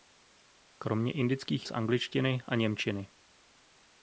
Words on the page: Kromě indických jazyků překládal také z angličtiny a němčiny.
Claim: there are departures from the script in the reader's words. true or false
true